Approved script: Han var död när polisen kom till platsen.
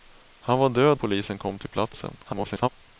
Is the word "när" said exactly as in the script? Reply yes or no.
no